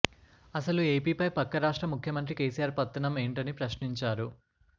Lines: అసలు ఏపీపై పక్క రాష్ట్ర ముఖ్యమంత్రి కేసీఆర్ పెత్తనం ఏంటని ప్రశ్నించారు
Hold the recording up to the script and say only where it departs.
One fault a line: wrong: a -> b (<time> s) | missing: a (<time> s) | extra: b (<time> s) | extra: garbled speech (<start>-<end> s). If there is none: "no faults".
no faults